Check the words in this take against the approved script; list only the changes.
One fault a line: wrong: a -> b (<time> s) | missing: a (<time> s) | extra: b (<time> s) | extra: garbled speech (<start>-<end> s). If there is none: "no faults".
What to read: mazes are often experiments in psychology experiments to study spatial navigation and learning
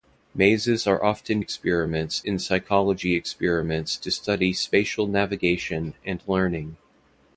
no faults